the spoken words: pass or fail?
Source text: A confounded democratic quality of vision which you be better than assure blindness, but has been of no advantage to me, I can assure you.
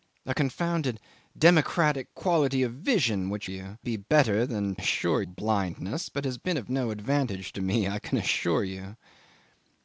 pass